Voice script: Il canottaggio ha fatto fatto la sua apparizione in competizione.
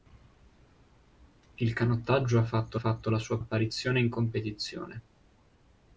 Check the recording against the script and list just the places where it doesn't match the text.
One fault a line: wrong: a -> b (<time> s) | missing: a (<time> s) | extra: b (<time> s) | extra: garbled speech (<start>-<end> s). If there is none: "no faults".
no faults